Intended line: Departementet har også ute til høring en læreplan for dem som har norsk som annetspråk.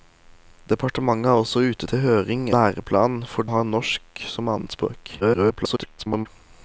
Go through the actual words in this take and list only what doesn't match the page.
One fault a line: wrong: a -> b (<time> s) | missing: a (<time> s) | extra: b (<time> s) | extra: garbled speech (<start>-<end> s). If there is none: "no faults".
missing: en (2.4 s)
missing: dem som (3.5 s)
extra: garbled speech (5.2-6.3 s)